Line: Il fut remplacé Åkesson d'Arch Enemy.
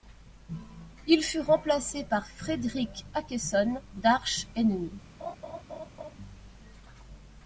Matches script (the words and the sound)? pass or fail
fail